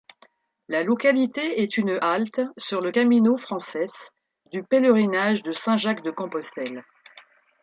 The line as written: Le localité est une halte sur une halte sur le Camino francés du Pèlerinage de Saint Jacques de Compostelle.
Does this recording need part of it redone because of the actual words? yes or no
yes